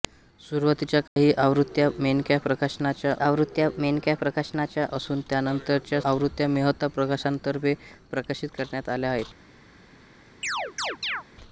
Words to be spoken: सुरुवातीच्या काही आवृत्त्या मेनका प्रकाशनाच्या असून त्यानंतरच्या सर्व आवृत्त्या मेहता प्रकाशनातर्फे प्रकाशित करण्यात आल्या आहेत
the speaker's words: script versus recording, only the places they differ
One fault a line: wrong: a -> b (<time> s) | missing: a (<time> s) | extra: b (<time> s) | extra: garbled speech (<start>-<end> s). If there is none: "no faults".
extra: आवृत्त्या मेनका प्रकाशनाच्या (3.2 s)
missing: सर्व (6.0 s)